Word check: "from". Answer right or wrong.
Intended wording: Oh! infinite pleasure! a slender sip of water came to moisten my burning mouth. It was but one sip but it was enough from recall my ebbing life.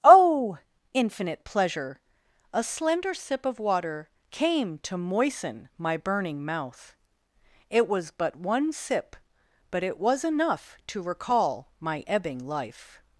wrong